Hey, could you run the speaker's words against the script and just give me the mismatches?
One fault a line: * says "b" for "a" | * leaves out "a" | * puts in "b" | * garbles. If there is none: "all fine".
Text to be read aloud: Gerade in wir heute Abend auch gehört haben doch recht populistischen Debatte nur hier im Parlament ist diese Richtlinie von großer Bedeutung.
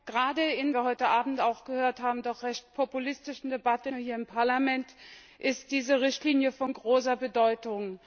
all fine